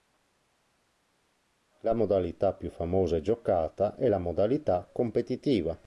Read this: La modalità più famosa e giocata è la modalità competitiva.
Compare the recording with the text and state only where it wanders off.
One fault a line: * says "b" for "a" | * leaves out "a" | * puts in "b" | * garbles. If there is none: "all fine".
all fine